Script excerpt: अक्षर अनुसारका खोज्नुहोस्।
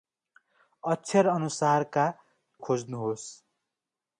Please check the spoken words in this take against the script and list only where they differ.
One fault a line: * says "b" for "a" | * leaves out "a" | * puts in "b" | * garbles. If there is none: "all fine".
all fine